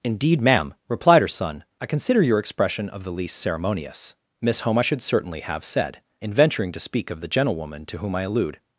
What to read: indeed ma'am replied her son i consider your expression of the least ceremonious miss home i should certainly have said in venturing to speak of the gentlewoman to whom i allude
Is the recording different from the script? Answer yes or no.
no